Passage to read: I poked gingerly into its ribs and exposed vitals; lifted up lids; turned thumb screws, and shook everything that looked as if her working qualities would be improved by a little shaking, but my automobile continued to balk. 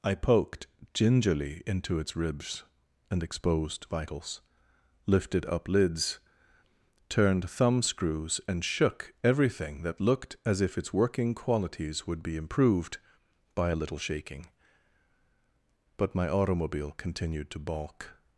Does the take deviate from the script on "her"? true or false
true